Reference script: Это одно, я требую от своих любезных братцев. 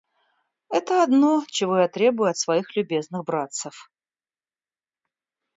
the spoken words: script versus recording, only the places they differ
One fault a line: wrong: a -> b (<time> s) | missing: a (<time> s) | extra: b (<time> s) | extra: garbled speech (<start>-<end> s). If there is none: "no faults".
extra: чего (1.5 s)